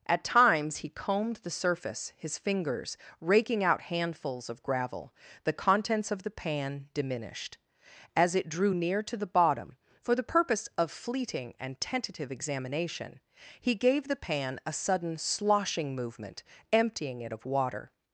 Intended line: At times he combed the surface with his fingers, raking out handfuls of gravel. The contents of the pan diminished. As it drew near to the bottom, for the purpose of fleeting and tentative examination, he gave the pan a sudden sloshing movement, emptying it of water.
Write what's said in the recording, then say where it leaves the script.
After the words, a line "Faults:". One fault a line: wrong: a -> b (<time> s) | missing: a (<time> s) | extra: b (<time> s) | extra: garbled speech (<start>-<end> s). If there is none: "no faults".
At times he combed the surface his fingers, raking out handfuls of gravel. The contents of the pan diminished. As it drew near to the bottom, for the purpose of fleeting and tentative examination, he gave the pan a sudden sloshing movement, emptying it of water.
Faults:
missing: with (2.1 s)